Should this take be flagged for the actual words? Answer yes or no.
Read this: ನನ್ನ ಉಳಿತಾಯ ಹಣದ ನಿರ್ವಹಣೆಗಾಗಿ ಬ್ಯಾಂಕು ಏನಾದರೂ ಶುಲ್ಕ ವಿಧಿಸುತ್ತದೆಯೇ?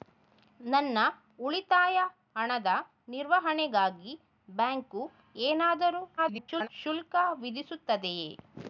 yes